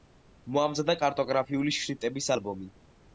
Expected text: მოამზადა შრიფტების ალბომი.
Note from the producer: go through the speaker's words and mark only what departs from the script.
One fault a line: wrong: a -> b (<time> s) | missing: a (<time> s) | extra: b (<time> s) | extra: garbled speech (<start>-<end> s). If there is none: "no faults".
extra: კარტოგრაფიული (1.0 s)